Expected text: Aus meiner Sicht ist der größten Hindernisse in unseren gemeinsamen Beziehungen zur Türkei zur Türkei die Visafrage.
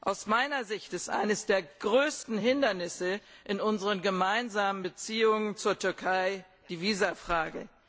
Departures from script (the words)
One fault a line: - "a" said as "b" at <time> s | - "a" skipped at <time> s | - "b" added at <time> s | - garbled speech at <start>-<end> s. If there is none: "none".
- "eines" added at 1.1 s
- "zur Türkei" skipped at 6.4 s